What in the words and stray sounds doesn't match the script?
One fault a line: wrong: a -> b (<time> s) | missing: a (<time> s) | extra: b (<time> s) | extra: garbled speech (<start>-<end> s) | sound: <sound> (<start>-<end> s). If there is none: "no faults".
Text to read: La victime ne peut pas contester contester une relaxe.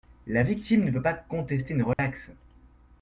missing: contester (1.7 s)
sound: dropout (1.9-2.0 s)